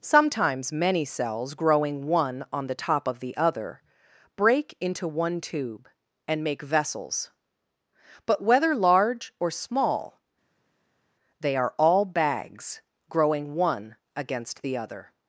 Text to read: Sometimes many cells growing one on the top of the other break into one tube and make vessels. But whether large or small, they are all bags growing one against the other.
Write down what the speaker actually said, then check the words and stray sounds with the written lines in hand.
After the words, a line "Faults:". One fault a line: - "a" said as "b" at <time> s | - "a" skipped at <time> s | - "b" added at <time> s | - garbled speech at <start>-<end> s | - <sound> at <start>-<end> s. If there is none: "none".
Sometimes many cells growing one on the top of the other break into one tube and make vessels. But whether large or small, they are all bags growing one against the other.
Faults:
none